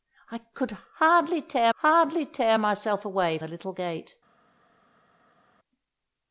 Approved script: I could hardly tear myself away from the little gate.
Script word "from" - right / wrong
wrong